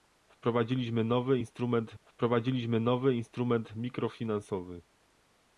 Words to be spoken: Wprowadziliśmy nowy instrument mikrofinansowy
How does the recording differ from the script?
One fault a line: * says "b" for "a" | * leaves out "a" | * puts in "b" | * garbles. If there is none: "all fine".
* puts in "wprowadziliśmy nowy instrument"